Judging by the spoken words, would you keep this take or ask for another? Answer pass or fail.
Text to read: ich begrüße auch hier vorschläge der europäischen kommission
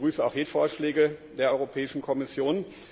pass